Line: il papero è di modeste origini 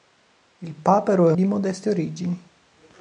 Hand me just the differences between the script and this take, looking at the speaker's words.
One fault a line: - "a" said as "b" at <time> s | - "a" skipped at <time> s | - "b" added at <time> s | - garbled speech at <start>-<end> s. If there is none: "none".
none